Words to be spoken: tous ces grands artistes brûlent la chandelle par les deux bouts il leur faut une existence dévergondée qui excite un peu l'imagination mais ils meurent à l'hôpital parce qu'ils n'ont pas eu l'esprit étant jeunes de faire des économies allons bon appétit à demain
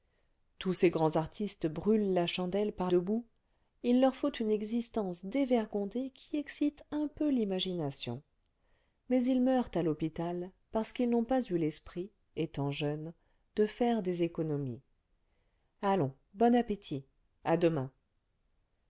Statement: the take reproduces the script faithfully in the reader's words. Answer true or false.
false